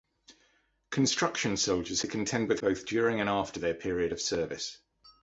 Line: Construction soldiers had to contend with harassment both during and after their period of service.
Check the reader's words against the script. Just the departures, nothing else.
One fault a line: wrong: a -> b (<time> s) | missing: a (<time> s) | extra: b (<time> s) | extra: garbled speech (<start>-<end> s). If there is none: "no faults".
missing: had (2.0 s)
missing: harassment (2.6 s)